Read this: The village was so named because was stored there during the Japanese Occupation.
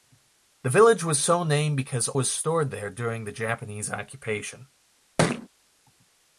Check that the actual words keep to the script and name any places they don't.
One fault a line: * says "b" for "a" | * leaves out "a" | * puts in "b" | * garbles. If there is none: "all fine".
all fine